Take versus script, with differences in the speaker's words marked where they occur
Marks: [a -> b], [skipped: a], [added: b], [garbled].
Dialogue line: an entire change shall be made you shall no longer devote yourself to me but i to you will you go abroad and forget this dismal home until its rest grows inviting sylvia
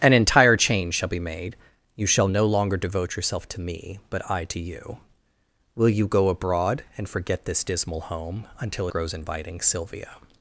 an entire change shall be made you shall no longer devote yourself to me but i to you will you go abroad and forget this dismal home until [skipped: its rest] grows inviting sylvia